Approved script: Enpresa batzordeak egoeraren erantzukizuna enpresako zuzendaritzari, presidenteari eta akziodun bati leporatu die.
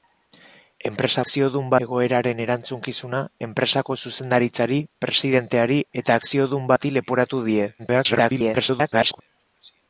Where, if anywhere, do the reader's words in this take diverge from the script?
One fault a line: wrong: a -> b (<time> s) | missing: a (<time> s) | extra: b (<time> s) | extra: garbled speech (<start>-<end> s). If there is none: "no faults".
wrong: batzordeak -> akziodun (1.3 s)
extra: garbled speech (7.8-9.2 s)